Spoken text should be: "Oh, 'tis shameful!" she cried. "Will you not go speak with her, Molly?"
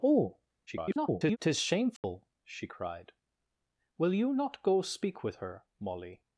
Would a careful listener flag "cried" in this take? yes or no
no